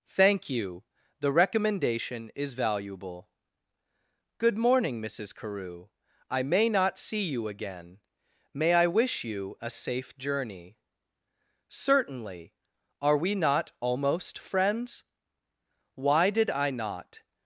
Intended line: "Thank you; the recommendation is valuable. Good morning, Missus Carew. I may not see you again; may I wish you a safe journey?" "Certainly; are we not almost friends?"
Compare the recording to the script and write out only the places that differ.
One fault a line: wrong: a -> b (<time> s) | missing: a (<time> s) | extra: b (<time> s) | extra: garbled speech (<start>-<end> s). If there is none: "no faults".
extra: Why did I not (15.9 s)